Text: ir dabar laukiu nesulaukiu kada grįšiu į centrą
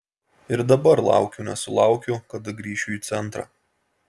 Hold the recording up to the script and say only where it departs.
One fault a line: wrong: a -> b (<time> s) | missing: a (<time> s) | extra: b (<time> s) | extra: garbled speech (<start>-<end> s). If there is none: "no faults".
no faults